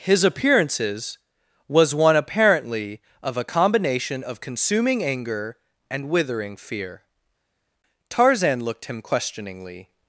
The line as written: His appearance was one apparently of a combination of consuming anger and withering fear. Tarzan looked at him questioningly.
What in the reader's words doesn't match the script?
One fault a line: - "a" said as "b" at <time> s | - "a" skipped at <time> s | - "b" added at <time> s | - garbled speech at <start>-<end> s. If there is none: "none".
- "appearance" said as "appearances" at 0.2 s
- "at" skipped at 8.9 s